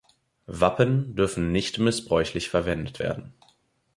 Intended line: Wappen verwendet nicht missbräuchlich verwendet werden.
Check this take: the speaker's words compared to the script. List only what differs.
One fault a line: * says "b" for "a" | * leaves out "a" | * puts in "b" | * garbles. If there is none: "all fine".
* says "dürfen" for "verwendet"